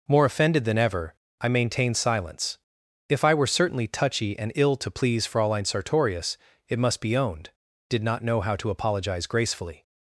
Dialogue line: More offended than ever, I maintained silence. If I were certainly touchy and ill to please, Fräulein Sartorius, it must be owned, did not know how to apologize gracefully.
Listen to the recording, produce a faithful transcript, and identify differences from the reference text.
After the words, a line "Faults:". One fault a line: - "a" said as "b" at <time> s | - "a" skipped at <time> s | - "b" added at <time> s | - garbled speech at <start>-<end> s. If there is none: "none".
More offended than ever, I maintained silence. If I were certainly touchy and ill to please, Fräulein Sartorius, it must be owned, did not know how to apologize gracefully.
Faults:
none